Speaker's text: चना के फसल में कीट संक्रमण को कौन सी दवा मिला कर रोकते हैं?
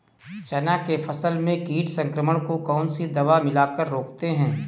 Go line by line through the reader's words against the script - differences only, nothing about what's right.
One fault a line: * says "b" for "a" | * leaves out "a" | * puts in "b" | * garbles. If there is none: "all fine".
all fine